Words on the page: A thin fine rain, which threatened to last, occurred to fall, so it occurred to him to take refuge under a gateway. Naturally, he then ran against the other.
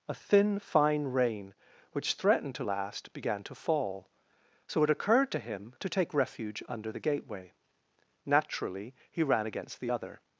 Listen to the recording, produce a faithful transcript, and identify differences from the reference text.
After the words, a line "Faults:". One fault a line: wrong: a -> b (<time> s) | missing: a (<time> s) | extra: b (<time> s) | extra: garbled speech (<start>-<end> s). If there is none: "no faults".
A thin fine rain, which threatened to last, began to fall, so it occurred to him to take refuge under the gateway. Naturally, he ran against the other.
Faults:
wrong: occurred -> began (3.1 s)
wrong: a -> the (6.9 s)
missing: then (9.2 s)